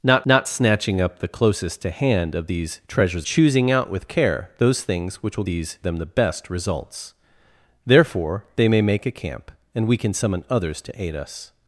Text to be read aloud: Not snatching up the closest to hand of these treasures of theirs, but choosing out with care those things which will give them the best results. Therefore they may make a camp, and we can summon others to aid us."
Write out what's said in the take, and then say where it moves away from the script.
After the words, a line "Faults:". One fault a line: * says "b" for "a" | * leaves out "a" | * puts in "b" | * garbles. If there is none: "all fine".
Not not snatching up the closest to hand of these treasures choosing out with care those things which will these them the best results. Therefore they may make a camp, and we can summon others to aid us."
Faults:
* puts in "not"
* leaves out "of theirs but"
* says "these" for "give"